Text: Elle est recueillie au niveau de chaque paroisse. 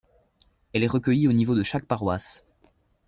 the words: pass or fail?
pass